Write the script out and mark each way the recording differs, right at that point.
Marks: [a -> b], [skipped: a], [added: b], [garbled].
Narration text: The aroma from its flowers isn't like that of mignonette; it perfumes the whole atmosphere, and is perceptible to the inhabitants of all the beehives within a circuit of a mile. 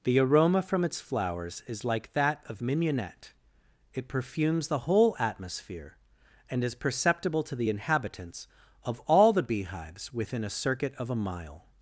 The aroma from its flowers [isn't -> is] like that of mignonette; it perfumes the whole atmosphere, and is perceptible to the inhabitants of all the beehives within a circuit of a mile.